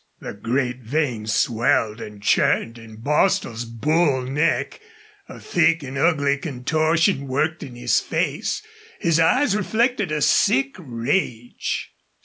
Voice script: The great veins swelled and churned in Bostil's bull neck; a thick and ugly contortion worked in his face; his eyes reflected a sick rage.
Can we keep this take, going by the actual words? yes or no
yes